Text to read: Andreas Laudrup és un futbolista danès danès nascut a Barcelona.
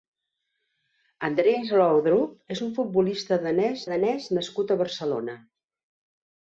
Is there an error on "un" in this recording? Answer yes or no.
no